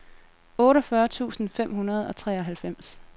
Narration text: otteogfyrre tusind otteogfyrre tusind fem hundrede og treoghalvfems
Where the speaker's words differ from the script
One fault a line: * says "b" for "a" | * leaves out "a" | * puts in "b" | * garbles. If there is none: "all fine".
* leaves out "otteogfyrre tusind"